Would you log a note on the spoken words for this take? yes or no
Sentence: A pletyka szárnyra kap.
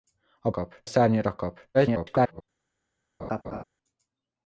yes